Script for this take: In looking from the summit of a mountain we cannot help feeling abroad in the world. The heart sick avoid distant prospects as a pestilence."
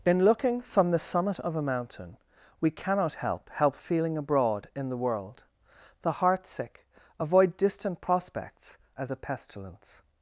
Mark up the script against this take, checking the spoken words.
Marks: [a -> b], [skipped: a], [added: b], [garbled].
In looking from the summit of a mountain we cannot help [added: help] feeling abroad in the world. The heart sick avoid distant prospects as a pestilence."